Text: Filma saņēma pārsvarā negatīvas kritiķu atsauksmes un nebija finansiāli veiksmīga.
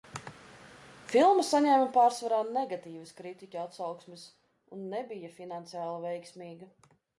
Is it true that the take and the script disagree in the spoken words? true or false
false